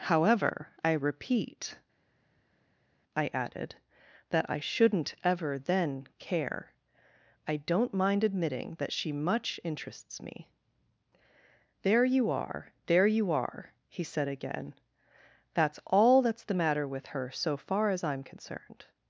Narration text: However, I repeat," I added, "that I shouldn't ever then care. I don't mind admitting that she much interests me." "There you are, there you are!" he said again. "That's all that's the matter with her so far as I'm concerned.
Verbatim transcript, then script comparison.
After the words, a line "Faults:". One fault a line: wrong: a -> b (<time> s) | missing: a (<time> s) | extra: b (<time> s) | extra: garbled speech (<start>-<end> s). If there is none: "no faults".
However, I repeat," I added, "that I shouldn't ever then care. I don't mind admitting that she much interests me." "There you are, there you are!" he said again. "That's all that's the matter with her so far as I'm concerned.
Faults:
no faults